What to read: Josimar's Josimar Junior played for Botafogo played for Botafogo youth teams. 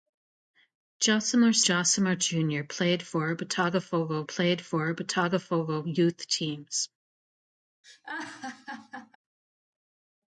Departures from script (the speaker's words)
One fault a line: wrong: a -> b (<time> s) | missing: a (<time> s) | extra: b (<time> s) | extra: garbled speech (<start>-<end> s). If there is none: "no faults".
no faults